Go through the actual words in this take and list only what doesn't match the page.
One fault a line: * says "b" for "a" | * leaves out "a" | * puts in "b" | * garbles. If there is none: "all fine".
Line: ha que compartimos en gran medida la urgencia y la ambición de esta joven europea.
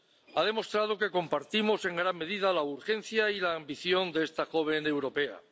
* puts in "demostrado"